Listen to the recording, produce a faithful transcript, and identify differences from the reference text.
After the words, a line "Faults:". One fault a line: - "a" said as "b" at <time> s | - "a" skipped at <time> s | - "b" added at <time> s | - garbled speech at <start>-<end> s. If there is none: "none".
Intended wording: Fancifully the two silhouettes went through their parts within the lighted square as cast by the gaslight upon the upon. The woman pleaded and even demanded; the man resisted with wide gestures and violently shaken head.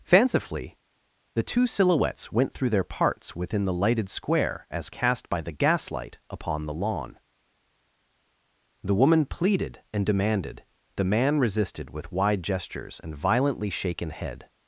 Fancifully the two silhouettes went through their parts within the lighted square as cast by the gaslight upon the lawn. The woman pleaded and demanded; the man resisted with wide gestures and violently shaken head.
Faults:
- "upon" said as "lawn" at 6.7 s
- "even" skipped at 10.1 s